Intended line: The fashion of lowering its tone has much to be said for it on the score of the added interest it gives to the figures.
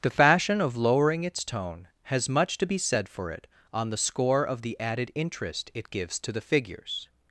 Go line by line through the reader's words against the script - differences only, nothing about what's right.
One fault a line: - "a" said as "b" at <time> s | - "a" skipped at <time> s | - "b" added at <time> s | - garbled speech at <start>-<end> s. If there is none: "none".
none